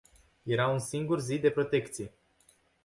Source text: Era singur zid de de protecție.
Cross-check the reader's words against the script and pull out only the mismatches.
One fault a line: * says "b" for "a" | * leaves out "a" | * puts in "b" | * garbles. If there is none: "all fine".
* puts in "un"
* leaves out "de"